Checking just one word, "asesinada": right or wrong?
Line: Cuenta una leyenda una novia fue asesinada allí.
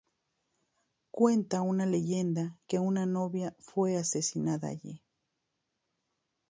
right